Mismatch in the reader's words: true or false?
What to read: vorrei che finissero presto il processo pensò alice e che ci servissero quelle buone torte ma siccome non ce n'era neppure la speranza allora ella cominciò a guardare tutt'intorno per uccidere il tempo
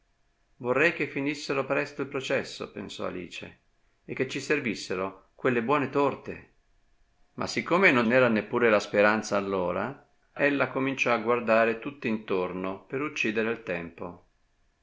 true